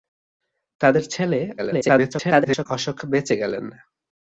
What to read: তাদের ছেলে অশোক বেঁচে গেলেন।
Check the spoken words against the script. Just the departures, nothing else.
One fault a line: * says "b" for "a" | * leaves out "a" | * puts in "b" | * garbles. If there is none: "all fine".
* garbles